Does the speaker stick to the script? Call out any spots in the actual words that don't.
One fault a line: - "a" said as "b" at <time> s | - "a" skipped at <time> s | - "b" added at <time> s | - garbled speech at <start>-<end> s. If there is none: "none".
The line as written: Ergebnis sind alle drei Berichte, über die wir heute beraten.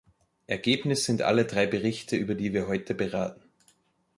none